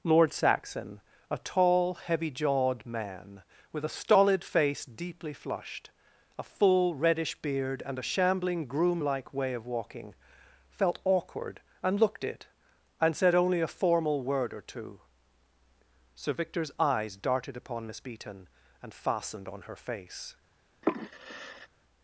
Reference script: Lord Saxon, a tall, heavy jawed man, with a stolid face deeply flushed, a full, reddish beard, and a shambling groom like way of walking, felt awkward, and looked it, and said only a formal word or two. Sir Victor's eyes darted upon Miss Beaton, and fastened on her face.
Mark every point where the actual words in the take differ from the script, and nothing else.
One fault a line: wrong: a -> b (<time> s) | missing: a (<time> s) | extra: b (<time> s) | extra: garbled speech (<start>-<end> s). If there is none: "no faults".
no faults